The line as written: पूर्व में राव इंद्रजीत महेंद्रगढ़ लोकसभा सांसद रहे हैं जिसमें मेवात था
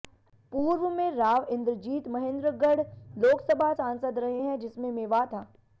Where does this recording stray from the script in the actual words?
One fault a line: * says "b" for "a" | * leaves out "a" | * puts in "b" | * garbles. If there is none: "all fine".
all fine